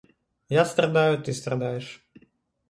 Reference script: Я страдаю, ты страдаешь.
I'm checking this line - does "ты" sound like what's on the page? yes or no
yes